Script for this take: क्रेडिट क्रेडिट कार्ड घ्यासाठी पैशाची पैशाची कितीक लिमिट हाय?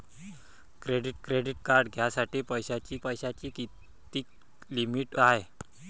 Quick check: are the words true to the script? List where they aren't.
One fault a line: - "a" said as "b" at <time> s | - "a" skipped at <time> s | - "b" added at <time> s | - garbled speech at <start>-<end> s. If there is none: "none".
none